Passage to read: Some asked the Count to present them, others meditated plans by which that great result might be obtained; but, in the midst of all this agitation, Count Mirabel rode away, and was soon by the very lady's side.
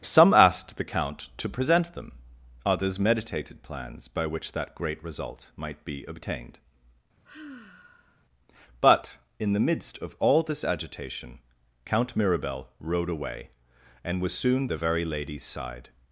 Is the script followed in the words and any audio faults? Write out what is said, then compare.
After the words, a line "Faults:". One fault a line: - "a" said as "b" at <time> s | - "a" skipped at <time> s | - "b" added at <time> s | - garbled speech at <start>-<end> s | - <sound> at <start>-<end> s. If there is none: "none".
Some asked the Count to present them, others meditated plans by which that great result might be obtained; but, in the midst of all this agitation, Count Mirabel rode away, and was soon the very lady's side.
Faults:
- sigh at 7.2-8.2 s
- "by" skipped at 14.7 s